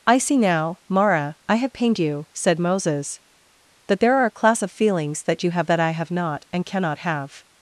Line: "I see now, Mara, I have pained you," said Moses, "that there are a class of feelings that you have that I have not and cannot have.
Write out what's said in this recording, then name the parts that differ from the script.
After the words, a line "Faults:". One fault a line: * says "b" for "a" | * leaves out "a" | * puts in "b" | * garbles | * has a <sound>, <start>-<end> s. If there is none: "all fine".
"I see now, Mara, I have pained you," said Moses, "that there are a class of feelings that you have that I have not and cannot have.
Faults:
all fine